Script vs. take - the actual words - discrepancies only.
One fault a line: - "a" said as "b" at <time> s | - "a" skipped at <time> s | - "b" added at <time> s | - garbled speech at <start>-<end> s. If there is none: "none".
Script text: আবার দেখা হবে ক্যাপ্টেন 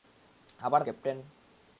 - "দেখা হবে" skipped at 0.8 s